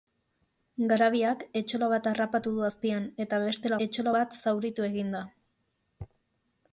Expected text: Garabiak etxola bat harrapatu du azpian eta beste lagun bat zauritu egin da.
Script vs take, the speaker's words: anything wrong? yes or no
yes